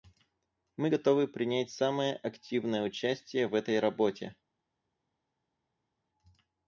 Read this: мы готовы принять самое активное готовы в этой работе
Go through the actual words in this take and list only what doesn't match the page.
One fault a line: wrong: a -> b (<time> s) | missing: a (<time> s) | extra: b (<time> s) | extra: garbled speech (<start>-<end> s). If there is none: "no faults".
wrong: готовы -> участие (2.8 s)